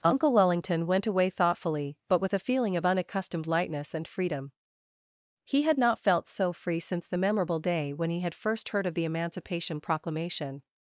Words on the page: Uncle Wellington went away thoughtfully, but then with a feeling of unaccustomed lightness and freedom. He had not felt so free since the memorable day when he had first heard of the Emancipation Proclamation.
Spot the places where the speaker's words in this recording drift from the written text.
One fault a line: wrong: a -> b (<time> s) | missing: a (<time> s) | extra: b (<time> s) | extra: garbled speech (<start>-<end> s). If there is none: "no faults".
missing: then (2.2 s)